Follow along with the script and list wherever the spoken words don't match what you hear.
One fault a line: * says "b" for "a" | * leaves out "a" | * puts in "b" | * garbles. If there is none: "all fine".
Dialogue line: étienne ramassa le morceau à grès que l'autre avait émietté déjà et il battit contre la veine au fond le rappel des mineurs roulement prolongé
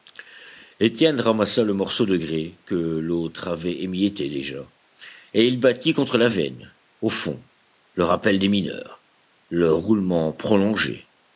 * says "de" for "à"
* puts in "le"